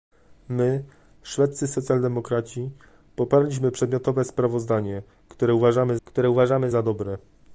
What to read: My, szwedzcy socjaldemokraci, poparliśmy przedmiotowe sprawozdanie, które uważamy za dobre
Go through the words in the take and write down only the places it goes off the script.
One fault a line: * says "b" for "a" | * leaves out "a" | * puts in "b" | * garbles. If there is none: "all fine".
* puts in "które uważamy"